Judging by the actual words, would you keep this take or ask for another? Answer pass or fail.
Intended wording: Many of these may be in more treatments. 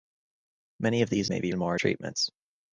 pass